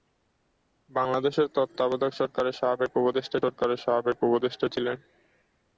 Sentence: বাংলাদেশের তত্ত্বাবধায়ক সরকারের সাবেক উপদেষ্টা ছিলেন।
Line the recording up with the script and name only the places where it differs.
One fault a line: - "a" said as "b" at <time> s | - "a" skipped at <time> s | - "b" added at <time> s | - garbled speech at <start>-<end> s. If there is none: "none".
- "সরকারের সাবেক উপদেষ্টা" added at 3.4 s